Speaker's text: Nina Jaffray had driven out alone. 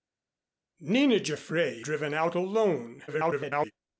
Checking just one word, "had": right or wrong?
wrong